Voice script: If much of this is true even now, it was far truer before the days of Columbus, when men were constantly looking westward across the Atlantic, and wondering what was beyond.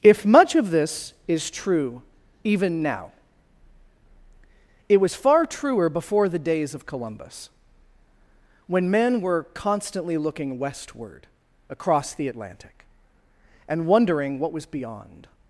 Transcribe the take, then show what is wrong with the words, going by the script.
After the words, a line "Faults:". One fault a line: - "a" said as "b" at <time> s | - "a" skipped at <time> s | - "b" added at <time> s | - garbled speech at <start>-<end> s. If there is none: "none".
If much of this is true even now, it was far truer before the days of Columbus, when men were constantly looking westward across the Atlantic, and wondering what was beyond.
Faults:
none